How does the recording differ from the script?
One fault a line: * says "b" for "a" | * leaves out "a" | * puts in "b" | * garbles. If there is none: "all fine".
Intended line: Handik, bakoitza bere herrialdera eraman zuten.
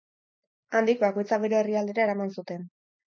all fine